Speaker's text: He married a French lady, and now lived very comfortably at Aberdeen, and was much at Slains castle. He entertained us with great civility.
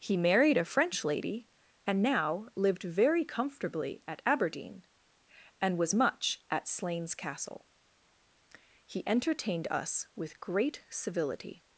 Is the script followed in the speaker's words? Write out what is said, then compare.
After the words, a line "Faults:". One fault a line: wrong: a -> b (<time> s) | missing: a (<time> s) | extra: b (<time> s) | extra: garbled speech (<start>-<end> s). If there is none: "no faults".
He married a French lady, and now lived very comfortably at Aberdeen, and was much at Slains castle. He entertained us with great civility.
Faults:
no faults